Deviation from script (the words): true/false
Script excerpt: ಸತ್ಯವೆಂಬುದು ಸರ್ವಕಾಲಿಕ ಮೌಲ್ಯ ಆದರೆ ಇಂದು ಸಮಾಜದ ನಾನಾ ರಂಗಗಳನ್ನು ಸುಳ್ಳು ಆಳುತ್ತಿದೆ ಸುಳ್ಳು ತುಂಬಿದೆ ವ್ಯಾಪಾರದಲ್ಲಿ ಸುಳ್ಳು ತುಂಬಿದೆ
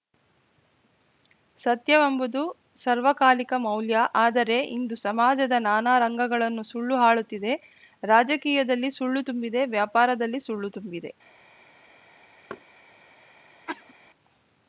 true